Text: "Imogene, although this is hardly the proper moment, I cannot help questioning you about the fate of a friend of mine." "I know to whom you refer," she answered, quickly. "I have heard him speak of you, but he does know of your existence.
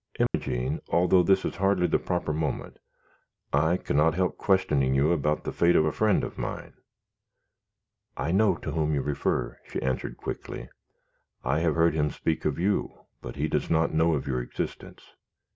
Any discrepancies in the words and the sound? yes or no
yes